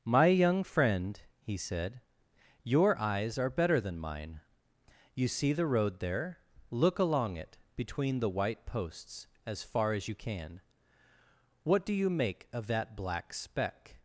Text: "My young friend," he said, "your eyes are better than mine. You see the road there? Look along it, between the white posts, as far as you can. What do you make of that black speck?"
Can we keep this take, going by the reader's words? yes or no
yes